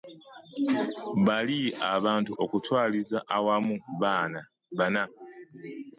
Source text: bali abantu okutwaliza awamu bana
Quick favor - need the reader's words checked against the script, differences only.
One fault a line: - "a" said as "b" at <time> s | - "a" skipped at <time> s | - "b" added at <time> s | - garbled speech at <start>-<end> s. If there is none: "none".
none